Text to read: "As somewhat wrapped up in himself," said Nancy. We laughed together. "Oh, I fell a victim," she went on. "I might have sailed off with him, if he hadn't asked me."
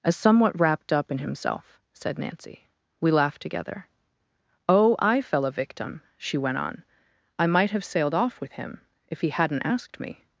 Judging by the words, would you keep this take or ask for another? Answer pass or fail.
pass